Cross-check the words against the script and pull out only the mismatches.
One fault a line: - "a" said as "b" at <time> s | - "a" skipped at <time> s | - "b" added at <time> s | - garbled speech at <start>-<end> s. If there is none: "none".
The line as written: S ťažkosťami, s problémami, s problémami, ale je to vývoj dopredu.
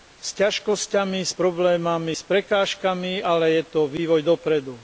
- "problémami" said as "prekážkami" at 2.3 s